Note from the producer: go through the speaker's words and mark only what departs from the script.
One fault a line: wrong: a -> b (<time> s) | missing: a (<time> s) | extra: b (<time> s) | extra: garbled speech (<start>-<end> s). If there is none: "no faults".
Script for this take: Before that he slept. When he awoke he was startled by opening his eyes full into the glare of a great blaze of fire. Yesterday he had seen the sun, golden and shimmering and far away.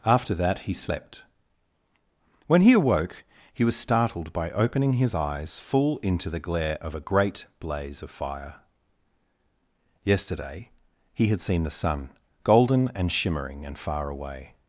wrong: Before -> After (0.1 s)